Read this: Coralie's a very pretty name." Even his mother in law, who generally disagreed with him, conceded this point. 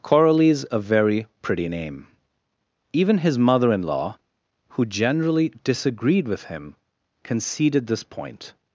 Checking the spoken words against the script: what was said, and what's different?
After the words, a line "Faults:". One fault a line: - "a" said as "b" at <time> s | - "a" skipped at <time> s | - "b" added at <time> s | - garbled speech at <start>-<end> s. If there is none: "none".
Coralie's a very pretty name." Even his mother in law, who generally disagreed with him, conceded this point.
Faults:
none